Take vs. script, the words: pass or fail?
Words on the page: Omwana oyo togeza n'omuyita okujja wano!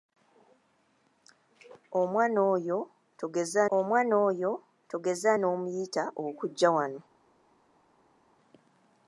fail